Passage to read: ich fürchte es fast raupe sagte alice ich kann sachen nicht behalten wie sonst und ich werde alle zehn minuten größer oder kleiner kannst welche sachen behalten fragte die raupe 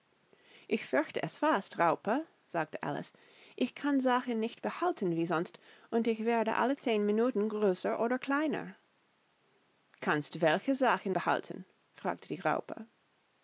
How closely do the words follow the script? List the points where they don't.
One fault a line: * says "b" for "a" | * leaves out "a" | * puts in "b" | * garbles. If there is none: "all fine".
all fine